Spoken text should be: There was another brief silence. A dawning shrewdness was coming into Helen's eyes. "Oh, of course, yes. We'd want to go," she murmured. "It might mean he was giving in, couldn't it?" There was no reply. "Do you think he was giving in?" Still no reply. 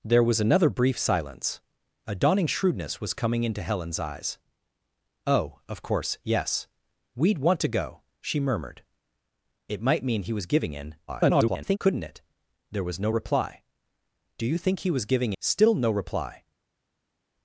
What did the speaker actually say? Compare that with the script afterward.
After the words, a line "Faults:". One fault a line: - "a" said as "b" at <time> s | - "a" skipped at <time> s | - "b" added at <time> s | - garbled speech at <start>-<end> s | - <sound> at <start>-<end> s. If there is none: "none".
There was another brief silence. A dawning shrewdness was coming into Helen's eyes. "Oh, of course, yes. We'd want to go," she murmured. "It might mean he was giving in, [garbled] couldn't it?" There was no reply. "Do you think he was giving?" Still no reply.
Faults:
- garbled speech at 11.1-11.8 s
- "in" skipped at 15.3 s